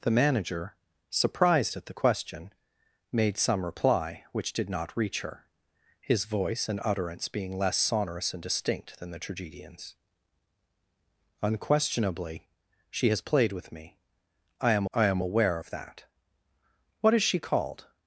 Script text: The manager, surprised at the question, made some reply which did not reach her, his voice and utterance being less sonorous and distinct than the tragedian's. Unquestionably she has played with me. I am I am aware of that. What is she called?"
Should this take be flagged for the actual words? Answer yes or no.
no